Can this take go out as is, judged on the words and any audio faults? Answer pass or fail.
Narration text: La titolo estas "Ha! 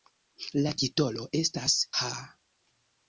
pass